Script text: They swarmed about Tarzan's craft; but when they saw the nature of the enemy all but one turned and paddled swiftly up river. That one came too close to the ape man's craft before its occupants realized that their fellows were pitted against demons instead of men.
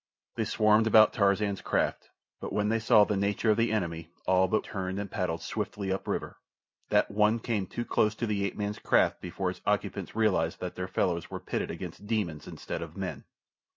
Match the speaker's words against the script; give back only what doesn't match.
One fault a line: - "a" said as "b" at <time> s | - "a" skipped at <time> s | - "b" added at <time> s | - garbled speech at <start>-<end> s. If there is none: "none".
- "one" skipped at 4.7 s